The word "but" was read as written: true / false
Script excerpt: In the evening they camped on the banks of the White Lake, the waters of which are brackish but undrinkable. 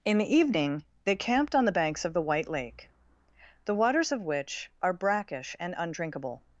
false